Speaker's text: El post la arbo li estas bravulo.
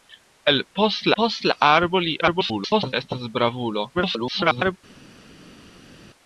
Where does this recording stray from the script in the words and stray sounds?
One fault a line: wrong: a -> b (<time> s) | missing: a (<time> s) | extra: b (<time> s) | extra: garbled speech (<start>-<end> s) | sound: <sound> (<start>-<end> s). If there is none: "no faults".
extra: post (1.2 s)
extra: garbled speech (2.2-2.9 s)
extra: garbled speech (3.9-4.8 s)